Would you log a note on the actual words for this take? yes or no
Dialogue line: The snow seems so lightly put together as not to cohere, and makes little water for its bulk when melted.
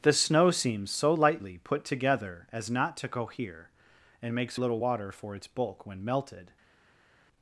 no